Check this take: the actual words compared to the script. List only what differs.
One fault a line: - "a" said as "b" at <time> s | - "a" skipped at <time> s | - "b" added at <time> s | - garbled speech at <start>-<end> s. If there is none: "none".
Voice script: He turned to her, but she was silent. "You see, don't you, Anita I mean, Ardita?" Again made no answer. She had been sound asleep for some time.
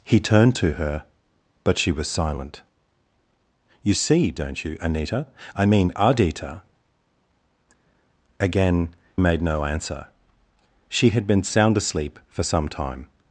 none